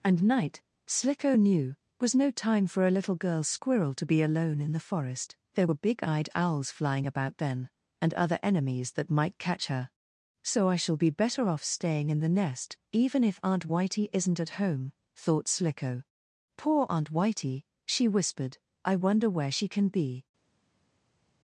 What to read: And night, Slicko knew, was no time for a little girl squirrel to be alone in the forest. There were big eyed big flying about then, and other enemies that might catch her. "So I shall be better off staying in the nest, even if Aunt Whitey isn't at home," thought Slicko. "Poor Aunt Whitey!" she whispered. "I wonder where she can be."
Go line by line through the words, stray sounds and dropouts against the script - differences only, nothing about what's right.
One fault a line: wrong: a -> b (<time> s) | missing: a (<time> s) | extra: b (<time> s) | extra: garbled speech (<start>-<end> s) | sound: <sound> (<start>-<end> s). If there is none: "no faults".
wrong: big -> owls (6.4 s)